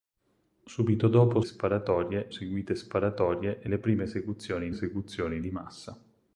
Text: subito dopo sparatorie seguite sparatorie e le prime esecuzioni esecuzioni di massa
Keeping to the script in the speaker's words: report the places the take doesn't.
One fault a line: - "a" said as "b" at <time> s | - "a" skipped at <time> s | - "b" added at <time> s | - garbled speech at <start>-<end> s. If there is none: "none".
none